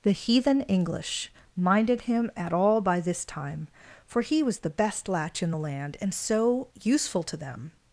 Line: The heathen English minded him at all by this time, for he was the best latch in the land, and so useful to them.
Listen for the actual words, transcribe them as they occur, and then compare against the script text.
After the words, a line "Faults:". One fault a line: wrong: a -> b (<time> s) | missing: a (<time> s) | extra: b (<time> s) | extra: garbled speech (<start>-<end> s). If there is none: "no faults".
The heathen English minded him at all by this time, for he was the best latch in the land, and so useful to them.
Faults:
no faults